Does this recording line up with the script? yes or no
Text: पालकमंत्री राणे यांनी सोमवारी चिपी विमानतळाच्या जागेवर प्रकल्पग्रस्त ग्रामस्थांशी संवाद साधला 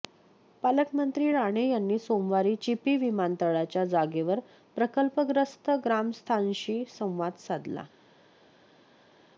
yes